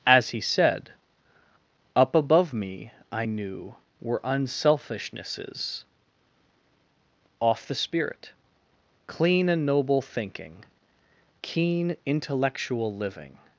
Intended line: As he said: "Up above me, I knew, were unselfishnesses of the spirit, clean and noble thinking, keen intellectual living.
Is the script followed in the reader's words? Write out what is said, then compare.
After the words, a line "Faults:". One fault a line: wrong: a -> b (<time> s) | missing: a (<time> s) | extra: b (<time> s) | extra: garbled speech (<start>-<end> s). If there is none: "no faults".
As he said: "Up above me, I knew, were unselfishnesses off the spirit, clean and noble thinking, keen intellectual living.
Faults:
wrong: of -> off (7.4 s)